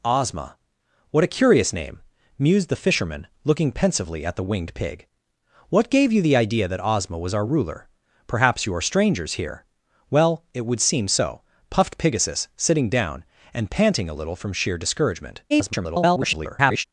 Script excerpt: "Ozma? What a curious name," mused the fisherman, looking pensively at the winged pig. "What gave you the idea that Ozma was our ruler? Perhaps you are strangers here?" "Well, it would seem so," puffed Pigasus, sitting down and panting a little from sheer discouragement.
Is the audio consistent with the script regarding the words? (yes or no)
no